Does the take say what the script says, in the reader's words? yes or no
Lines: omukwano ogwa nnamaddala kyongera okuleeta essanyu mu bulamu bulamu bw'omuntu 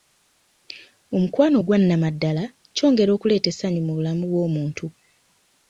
no